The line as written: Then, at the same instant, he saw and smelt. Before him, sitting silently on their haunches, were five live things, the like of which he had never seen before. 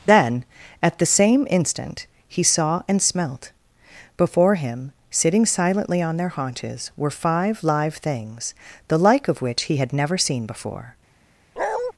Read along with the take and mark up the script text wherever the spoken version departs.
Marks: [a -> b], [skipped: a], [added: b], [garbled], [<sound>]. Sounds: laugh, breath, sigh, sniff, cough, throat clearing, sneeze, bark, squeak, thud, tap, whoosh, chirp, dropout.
Then, at the same instant, he saw and smelt. Before him, sitting silently on their haunches, were five live things, the like of which he had never seen before. [bark]